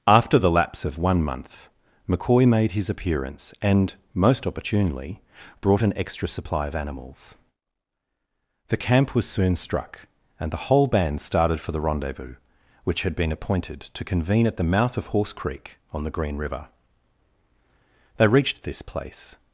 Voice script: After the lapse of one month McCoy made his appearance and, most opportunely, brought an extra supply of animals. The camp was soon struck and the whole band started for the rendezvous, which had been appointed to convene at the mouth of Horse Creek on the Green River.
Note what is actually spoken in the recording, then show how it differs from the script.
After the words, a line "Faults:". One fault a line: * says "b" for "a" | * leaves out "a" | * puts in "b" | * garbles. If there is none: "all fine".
After the lapse of one month McCoy made his appearance and, most opportunely, brought an extra supply of animals. The camp was soon struck and the whole band started for the rendezvous, which had been appointed to convene at the mouth of Horse Creek on the Green River. They reached this place
Faults:
* puts in "They reached this place"